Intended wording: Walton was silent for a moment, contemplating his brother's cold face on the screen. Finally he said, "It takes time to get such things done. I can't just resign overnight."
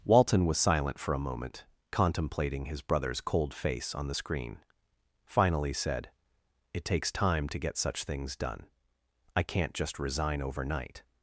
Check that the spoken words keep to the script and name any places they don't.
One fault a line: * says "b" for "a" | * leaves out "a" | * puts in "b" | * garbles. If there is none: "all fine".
* leaves out "he"